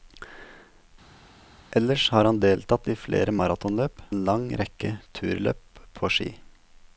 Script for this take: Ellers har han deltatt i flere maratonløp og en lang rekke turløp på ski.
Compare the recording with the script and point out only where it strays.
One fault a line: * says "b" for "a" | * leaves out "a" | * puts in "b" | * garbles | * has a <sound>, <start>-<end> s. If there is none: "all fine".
* leaves out "og"